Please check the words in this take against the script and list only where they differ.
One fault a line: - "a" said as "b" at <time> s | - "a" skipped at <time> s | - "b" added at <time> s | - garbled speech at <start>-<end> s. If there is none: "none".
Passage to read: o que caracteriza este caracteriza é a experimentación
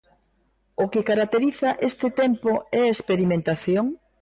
- "caracteriza" said as "tempo" at 2.2 s